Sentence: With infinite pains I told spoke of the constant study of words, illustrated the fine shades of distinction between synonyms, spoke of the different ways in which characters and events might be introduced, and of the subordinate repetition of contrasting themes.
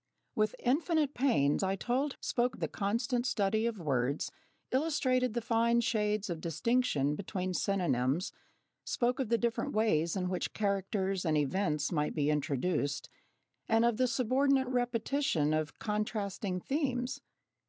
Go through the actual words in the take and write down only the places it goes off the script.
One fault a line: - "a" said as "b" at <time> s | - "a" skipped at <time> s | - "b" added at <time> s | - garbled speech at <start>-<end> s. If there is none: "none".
none